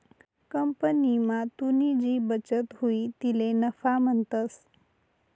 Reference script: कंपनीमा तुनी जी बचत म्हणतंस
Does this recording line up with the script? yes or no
no